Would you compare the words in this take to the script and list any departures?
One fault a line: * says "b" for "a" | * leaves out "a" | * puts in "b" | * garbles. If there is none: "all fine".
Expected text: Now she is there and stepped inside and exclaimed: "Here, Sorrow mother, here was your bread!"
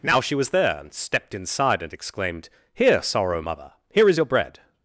* says "was" for "is"
* says "is" for "was"